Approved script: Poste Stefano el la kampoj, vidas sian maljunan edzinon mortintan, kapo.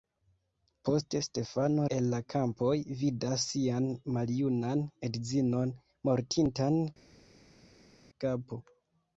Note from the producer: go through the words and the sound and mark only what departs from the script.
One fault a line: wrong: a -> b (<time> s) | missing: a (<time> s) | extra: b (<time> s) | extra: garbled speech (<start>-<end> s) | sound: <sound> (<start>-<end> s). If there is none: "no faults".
no faults